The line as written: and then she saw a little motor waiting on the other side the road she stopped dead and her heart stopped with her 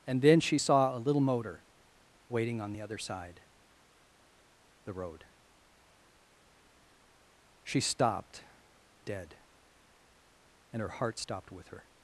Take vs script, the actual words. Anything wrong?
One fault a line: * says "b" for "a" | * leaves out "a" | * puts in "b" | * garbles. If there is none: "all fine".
all fine